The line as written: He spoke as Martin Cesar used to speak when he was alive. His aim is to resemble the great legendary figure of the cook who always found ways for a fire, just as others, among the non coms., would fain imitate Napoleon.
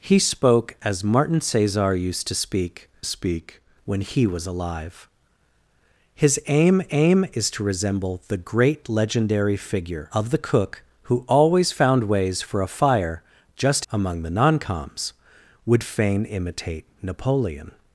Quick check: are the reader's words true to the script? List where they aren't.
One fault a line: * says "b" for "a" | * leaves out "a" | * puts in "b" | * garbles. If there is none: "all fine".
* puts in "speak"
* puts in "aim"
* leaves out "as others"